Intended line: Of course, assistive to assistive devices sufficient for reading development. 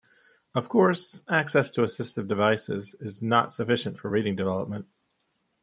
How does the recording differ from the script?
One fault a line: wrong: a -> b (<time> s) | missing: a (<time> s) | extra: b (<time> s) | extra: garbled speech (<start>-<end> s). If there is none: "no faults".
wrong: assistive -> access (1.3 s)
extra: is not (3.0 s)